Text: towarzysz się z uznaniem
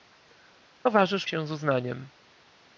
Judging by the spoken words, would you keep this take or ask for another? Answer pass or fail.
pass